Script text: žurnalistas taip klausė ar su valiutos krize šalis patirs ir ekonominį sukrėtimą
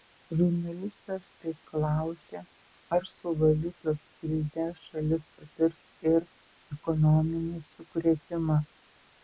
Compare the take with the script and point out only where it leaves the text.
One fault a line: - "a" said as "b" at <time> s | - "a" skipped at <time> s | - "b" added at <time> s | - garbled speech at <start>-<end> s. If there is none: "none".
none